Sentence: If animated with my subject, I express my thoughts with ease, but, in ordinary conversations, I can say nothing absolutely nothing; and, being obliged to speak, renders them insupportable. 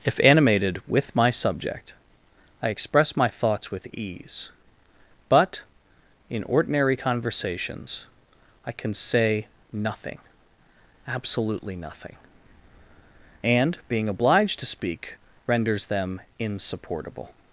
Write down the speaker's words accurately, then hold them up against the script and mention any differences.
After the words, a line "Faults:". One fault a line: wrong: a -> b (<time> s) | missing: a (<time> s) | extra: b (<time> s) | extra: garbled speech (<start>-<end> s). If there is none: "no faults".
If animated with my subject, I express my thoughts with ease, but, in ordinary conversations, I can say nothing absolutely nothing; and, being obliged to speak, renders them insupportable.
Faults:
no faults